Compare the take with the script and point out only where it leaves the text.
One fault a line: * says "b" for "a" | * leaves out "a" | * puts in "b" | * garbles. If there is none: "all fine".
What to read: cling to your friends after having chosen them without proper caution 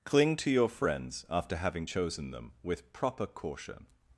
* says "with" for "without"